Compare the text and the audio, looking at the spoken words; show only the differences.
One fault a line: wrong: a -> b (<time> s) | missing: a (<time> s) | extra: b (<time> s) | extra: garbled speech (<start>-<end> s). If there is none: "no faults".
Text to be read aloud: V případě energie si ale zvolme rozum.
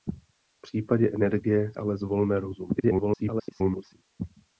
missing: si (1.7 s)
extra: garbled speech (2.8-3.9 s)